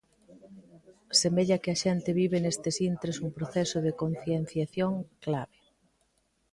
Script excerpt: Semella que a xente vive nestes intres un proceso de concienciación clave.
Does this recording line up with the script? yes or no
yes